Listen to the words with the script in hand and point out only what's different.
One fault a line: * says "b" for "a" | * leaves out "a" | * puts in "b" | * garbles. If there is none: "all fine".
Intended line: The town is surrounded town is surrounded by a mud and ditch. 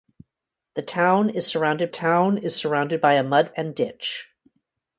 all fine